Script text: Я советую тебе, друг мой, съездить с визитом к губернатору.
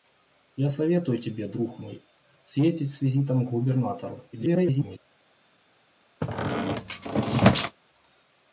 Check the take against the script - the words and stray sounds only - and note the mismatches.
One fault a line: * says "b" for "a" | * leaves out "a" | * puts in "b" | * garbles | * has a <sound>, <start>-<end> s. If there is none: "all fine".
* garbles
* has a squeak, 6.2-7.8 s